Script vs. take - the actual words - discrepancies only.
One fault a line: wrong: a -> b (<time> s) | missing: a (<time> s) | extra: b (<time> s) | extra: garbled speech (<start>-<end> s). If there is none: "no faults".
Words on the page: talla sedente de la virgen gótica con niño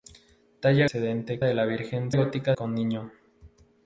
no faults